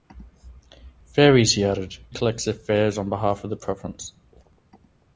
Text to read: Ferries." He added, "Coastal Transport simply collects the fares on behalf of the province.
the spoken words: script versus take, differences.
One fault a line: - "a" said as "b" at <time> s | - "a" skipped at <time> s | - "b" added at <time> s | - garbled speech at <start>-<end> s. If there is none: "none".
- "Coastal Transport simply" skipped at 1.9 s